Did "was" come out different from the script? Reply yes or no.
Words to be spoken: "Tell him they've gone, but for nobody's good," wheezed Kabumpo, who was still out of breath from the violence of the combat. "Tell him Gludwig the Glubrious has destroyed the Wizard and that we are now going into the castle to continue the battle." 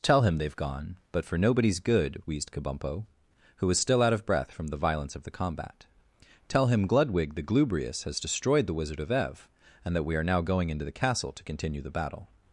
no